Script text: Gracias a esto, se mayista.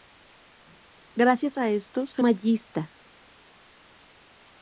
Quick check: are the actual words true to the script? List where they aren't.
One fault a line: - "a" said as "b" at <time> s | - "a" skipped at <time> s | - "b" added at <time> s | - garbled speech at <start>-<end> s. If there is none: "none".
none